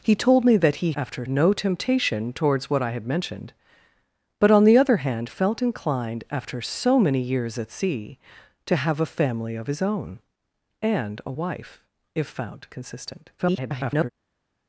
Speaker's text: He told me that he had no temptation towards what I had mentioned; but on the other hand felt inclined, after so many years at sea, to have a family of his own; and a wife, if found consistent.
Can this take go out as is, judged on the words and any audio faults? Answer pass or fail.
fail